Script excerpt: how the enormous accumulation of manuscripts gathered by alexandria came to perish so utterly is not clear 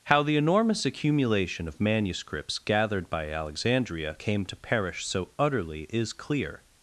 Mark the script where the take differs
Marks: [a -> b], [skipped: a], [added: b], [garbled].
how the enormous accumulation of manuscripts gathered by alexandria came to perish so utterly is [skipped: not] clear